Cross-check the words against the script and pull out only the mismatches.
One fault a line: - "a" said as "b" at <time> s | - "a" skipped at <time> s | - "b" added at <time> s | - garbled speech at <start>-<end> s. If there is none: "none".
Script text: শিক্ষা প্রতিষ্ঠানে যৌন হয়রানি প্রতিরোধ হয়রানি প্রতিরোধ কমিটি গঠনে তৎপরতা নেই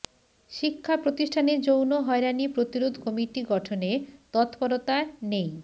- "হয়রানি প্রতিরোধ" skipped at 2.9 s